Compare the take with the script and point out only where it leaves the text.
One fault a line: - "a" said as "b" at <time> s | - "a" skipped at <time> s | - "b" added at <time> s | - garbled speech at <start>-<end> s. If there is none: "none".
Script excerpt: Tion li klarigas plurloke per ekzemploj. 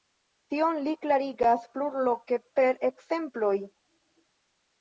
none